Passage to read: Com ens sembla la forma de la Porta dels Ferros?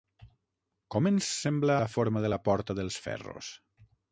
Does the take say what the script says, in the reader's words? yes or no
yes